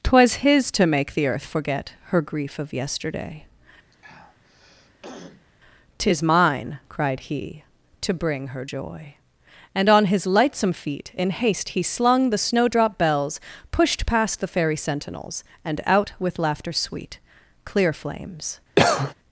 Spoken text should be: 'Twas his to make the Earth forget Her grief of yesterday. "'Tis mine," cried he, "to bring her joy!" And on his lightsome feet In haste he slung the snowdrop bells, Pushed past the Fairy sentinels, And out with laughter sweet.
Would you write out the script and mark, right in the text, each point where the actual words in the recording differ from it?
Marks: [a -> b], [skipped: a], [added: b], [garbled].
'Twas his to make the Earth forget Her grief of yesterday. "'Tis mine," cried he, "to bring her joy!" And on his lightsome feet In haste he slung the snowdrop bells, Pushed past the Fairy sentinels, And out with laughter sweet. [added: Clear flames]